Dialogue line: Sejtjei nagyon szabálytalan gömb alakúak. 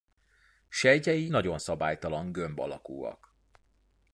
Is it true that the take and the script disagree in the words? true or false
false